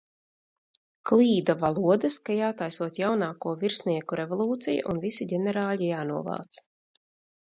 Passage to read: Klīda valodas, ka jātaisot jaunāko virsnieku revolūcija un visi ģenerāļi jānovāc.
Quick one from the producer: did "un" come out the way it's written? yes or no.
yes